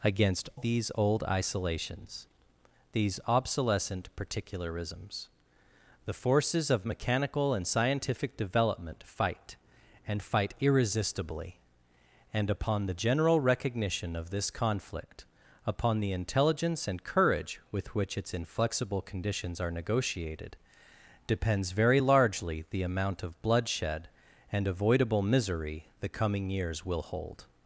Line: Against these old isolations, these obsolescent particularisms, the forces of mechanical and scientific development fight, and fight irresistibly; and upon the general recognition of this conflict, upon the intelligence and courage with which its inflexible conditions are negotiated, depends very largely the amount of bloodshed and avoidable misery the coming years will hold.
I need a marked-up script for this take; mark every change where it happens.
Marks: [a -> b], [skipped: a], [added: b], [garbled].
Against these old isolations, these obsolescent particularisms, the forces of mechanical and scientific development fight, and fight irresistibly; and upon the general recognition of this conflict, upon the intelligence and courage with which its inflexible conditions are negotiated, depends very largely the amount of bloodshed and avoidable misery the coming years will hold.